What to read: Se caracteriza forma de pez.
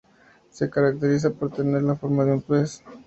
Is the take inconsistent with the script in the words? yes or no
yes